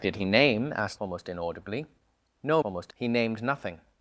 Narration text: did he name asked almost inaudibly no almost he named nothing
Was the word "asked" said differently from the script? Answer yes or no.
no